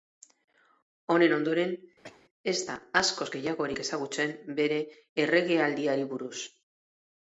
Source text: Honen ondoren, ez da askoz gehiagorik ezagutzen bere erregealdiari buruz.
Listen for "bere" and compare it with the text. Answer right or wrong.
right